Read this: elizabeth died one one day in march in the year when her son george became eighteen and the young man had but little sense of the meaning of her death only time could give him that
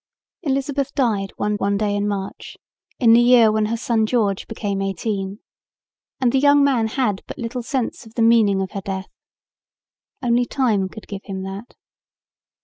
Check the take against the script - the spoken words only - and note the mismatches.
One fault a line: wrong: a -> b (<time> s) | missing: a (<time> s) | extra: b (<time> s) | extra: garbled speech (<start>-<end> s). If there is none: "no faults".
no faults